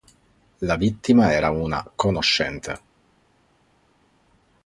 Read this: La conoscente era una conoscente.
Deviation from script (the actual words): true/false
true